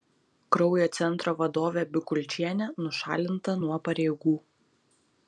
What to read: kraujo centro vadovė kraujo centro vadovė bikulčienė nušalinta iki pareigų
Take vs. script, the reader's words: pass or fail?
fail